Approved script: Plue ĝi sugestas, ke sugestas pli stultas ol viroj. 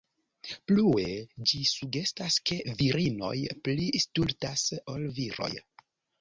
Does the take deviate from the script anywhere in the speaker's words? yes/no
yes